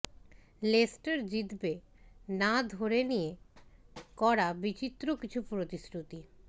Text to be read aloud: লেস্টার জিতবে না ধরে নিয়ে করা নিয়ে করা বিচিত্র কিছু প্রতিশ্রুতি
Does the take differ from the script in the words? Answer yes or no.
yes